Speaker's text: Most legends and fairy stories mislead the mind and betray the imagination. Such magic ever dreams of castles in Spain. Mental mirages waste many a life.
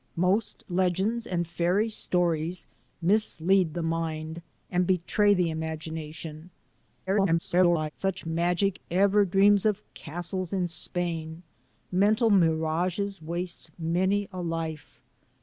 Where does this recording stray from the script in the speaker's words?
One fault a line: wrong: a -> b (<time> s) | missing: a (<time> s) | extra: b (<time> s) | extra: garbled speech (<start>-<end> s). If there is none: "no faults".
extra: garbled speech (7.1-7.9 s)